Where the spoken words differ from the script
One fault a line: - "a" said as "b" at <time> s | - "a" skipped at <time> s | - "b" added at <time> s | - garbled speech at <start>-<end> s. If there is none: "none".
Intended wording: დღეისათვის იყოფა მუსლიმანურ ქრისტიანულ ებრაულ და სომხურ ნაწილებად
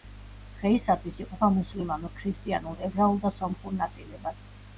none